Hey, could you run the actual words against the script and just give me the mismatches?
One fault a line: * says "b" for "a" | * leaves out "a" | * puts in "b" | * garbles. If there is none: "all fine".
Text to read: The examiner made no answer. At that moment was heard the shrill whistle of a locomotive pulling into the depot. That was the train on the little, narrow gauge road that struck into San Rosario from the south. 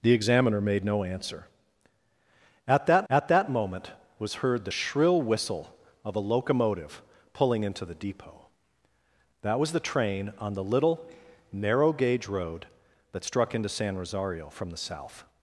* puts in "at that"